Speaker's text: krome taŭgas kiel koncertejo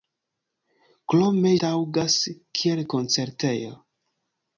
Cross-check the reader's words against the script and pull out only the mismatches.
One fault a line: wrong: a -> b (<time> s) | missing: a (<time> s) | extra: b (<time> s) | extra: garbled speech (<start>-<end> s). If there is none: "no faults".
no faults